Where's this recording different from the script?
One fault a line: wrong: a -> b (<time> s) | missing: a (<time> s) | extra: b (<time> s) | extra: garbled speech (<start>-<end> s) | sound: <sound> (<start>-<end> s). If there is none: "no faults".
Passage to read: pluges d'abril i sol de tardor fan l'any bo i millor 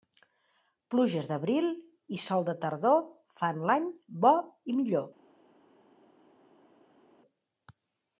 no faults